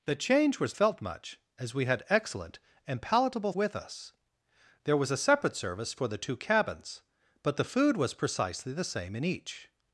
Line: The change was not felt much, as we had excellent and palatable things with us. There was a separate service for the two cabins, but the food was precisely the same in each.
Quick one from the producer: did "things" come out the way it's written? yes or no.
no